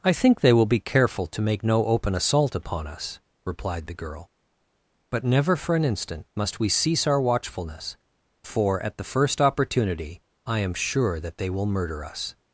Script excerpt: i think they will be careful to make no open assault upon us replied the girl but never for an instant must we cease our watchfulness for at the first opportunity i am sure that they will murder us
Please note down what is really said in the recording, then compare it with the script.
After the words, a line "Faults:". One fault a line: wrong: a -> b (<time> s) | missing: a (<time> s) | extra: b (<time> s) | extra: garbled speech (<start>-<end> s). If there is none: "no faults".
i think they will be careful to make no open assault upon us replied the girl but never for an instant must we cease our watchfulness for at the first opportunity i am sure that they will murder us
Faults:
no faults